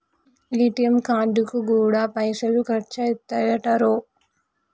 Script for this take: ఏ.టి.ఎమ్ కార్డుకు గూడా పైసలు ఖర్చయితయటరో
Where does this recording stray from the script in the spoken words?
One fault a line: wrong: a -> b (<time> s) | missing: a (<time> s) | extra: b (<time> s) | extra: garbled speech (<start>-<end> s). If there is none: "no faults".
no faults